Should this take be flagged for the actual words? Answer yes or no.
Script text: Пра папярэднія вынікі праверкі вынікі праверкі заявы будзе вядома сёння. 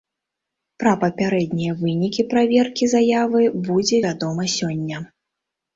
yes